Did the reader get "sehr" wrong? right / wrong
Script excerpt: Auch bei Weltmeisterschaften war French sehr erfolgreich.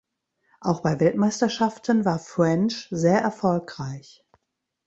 right